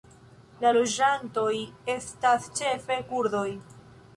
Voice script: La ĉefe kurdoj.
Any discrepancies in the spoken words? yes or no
yes